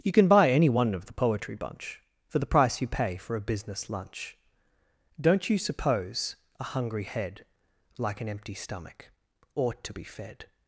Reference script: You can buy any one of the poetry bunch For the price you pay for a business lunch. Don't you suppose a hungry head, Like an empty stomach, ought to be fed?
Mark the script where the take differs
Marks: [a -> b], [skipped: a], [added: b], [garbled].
You can buy any one of the poetry bunch For the price you pay for a business lunch. Don't you suppose a hungry head, Like an empty stomach, ought to be fed?